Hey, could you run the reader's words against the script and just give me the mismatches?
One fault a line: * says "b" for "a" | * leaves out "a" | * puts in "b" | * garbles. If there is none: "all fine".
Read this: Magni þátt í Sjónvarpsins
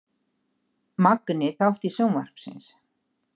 all fine